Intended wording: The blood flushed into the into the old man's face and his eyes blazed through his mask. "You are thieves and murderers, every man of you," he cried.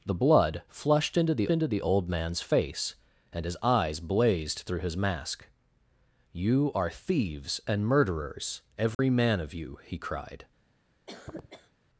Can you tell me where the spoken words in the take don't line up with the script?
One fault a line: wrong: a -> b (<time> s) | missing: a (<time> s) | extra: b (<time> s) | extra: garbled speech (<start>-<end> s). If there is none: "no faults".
no faults